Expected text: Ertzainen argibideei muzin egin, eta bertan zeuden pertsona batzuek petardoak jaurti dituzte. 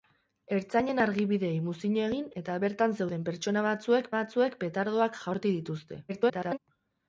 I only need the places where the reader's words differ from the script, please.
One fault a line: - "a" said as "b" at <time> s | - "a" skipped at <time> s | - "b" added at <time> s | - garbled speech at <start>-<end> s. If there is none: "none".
- "batzuek" added at 4.2 s
- garbled speech at 6.1-6.6 s